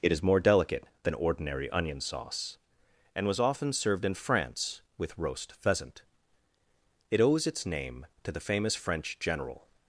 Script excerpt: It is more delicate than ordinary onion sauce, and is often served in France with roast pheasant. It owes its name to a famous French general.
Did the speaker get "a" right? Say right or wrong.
wrong